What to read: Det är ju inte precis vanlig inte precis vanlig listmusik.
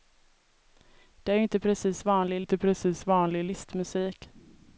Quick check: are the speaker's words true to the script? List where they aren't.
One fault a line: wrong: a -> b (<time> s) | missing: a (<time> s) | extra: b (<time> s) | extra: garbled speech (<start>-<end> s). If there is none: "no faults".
no faults